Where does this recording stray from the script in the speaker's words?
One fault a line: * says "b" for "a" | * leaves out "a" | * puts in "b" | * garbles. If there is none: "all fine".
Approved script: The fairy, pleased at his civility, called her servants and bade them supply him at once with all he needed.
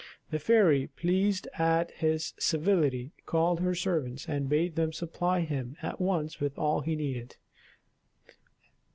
all fine